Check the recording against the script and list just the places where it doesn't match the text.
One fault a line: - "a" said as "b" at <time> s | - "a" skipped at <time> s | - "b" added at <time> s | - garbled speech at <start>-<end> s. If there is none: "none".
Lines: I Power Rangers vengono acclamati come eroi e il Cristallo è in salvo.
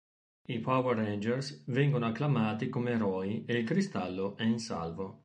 none